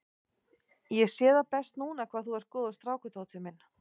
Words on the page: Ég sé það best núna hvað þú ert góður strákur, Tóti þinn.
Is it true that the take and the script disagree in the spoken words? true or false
true